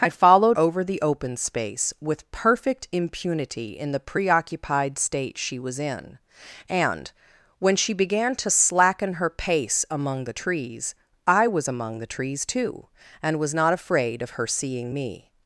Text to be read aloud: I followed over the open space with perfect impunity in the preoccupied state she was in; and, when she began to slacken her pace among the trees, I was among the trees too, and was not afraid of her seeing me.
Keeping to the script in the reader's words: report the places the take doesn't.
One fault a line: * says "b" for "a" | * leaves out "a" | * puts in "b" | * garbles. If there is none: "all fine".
all fine